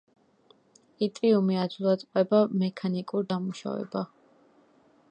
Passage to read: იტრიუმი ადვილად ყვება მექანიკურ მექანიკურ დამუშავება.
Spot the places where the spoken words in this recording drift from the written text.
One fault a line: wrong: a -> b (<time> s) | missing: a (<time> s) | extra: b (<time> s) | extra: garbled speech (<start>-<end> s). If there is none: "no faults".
missing: მექანიკურ (3.3 s)